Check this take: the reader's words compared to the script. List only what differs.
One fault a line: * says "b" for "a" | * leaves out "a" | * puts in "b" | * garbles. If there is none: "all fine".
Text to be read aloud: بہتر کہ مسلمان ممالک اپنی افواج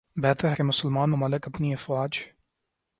all fine